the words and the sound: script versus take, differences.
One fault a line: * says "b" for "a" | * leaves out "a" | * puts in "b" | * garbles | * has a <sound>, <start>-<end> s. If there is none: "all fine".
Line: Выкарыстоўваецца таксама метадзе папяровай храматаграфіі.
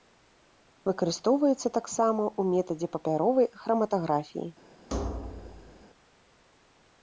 * puts in "ў"
* has a thud, 4.9-5.8 s